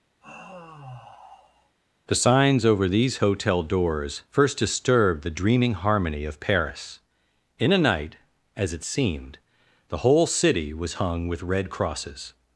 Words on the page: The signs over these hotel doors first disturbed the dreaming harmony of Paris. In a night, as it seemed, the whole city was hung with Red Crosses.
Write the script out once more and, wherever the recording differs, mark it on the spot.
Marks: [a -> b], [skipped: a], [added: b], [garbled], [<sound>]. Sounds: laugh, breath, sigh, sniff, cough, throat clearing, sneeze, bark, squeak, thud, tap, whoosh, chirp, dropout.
[sigh] The signs over these hotel doors first disturbed the dreaming harmony of Paris. In a night, as it seemed, the whole city was hung with Red Crosses.